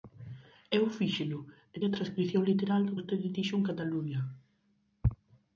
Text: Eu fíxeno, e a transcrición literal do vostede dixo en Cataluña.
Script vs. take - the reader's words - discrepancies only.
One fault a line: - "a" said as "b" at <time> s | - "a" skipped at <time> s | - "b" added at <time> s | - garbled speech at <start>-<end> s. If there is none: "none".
none